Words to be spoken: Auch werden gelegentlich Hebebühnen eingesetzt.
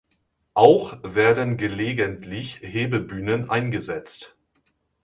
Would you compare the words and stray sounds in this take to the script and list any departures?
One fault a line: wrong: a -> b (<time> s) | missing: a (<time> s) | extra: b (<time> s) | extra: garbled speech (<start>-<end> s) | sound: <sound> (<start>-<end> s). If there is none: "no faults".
no faults